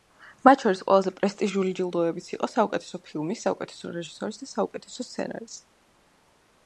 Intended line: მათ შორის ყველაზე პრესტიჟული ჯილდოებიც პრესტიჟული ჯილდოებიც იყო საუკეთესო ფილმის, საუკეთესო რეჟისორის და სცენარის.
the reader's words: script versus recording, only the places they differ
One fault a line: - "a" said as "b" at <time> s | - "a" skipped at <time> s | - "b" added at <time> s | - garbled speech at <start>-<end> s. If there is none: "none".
- "პრესტიჟული ჯილდოებიც" skipped at 2.3 s
- "საუკეთესო" added at 4.5 s